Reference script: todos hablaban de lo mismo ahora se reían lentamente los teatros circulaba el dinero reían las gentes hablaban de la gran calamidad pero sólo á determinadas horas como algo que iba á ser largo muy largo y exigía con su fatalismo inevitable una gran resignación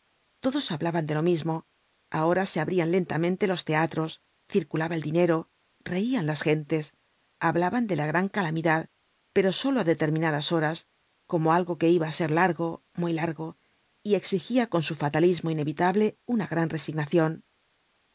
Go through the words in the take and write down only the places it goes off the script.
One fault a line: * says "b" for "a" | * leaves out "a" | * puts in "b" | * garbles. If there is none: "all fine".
* says "abrían" for "reían"